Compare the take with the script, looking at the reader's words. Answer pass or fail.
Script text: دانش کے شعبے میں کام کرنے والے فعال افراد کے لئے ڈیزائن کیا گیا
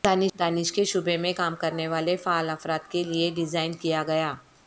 pass